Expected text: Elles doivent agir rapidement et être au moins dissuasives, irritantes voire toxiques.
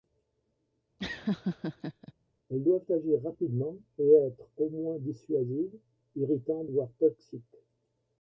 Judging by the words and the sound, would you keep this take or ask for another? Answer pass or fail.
fail